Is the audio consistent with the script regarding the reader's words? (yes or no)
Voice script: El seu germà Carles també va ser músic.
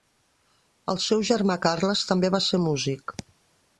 yes